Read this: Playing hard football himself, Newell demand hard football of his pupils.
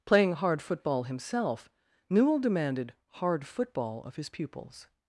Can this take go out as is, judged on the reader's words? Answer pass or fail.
fail